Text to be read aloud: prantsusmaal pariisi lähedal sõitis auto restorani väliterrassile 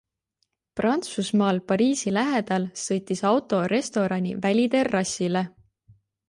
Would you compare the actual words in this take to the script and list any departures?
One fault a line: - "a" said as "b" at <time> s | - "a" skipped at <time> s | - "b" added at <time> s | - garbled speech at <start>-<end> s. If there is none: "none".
none